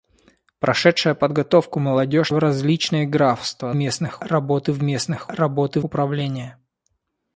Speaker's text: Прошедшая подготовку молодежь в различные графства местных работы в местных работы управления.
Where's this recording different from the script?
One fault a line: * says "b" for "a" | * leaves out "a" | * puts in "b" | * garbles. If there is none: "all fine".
all fine